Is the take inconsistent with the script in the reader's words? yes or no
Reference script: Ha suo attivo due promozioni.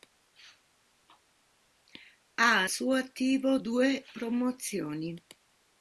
no